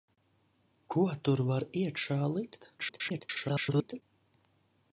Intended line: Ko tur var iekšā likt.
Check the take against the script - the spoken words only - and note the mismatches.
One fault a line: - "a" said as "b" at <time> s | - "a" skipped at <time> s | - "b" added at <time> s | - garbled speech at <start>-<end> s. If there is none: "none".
- garbled speech at 2.8-4.0 s